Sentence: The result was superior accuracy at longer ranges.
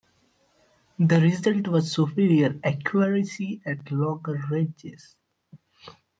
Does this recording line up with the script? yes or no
yes